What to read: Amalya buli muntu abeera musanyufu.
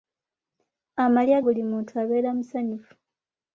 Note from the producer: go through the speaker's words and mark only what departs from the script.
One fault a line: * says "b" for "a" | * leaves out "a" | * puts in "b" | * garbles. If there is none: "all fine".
all fine